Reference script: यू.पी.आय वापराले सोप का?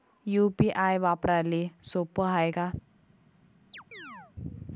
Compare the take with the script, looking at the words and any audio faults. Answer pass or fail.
fail